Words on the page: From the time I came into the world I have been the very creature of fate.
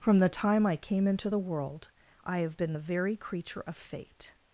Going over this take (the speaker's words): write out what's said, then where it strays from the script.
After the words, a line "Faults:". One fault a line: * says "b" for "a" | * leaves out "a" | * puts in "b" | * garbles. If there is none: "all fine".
From the time I came into the world I have been the very creature of fate.
Faults:
all fine